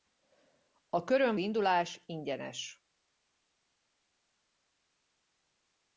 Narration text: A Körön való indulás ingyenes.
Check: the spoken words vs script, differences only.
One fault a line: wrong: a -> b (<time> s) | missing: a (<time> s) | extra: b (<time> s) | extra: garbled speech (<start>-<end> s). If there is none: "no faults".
missing: való (1.4 s)